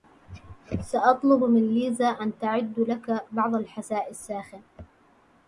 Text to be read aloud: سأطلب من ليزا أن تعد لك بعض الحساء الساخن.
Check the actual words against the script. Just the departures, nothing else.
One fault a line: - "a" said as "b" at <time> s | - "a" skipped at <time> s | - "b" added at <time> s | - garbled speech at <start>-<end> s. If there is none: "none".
none